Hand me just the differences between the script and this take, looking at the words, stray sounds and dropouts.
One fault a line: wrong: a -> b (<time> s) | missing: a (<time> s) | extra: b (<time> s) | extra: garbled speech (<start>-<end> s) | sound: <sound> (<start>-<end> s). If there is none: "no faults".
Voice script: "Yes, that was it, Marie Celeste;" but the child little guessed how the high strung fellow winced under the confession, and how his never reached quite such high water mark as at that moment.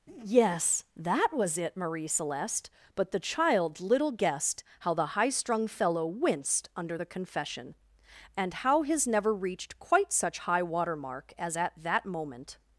no faults